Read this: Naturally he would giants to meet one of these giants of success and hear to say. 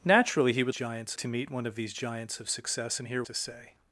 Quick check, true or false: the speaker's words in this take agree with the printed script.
true